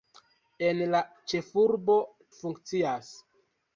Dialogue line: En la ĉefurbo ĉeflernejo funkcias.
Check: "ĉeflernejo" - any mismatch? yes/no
yes